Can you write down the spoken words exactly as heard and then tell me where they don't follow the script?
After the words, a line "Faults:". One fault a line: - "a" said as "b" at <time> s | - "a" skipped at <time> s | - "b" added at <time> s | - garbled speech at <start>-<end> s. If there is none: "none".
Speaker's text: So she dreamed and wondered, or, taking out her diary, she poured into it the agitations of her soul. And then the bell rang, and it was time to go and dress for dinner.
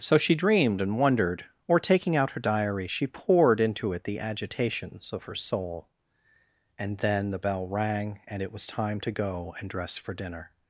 So she dreamed and wondered, or, taking out her diary, she poured into it the agitations of her soul. And then the bell rang, and it was time to go and dress for dinner.
Faults:
none